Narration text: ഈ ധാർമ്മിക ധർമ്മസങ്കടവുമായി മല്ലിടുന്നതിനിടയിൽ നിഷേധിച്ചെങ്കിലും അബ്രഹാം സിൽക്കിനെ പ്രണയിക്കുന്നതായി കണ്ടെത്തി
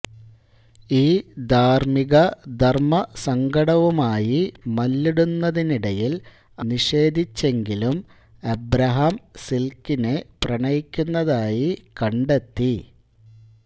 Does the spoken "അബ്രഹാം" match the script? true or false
true